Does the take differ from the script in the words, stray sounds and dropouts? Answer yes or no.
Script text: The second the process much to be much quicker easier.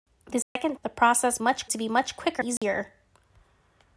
yes